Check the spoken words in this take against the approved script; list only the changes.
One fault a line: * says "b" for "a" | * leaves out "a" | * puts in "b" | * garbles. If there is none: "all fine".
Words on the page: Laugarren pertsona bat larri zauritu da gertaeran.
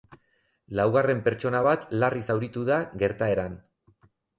all fine